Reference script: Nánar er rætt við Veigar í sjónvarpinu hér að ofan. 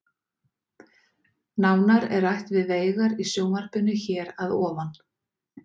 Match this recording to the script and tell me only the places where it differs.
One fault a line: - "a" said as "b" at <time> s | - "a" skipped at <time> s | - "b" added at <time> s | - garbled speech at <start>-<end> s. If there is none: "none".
none